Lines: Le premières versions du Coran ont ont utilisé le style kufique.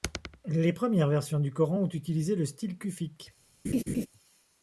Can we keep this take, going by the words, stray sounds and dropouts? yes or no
no